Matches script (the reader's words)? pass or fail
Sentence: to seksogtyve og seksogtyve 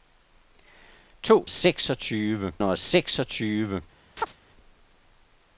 pass